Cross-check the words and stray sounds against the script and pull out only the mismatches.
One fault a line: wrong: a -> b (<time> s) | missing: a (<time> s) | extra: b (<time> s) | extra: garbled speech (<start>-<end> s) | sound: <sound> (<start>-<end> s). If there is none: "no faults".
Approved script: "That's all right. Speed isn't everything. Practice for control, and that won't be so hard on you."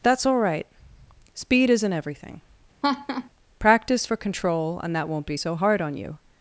sound: laugh (2.8-3.3 s)